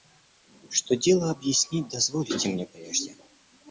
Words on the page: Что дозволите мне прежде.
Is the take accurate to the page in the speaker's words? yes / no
no